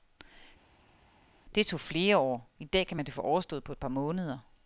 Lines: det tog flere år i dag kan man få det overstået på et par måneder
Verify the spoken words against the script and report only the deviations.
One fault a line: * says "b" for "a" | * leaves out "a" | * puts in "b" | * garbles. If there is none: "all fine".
all fine